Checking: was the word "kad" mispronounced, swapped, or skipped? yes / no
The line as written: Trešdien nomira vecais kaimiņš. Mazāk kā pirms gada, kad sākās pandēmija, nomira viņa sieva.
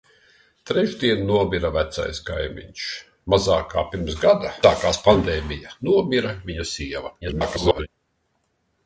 yes